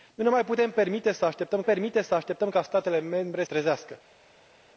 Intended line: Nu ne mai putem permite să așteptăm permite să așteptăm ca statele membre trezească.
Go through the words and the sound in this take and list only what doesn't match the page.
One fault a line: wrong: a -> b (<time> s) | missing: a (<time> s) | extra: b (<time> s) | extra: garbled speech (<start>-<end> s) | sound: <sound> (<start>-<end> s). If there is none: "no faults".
no faults